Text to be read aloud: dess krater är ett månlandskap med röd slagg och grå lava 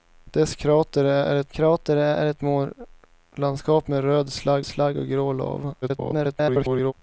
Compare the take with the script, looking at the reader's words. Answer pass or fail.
fail